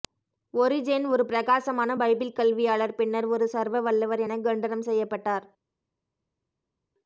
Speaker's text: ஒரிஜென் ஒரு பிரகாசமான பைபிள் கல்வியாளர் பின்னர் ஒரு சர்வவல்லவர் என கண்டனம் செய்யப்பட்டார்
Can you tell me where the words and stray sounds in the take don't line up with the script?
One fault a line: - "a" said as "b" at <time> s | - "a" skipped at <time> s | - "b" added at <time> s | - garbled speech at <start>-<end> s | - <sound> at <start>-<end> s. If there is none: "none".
none